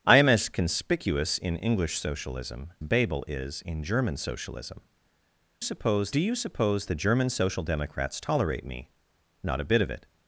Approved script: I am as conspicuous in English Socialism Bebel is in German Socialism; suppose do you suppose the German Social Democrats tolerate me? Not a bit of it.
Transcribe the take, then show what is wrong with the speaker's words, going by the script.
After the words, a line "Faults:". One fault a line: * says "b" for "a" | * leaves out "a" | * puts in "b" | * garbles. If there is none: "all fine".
I am as conspicuous in English Socialism Bebel is in German Socialism; suppose do you suppose the German Social Democrats tolerate me? Not a bit of it.
Faults:
all fine